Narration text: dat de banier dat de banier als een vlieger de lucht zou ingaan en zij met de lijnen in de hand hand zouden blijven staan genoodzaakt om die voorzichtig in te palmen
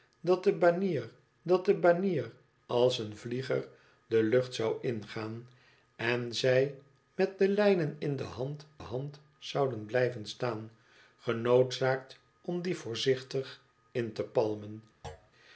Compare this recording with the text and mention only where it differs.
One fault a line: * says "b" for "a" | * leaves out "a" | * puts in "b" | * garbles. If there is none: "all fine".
all fine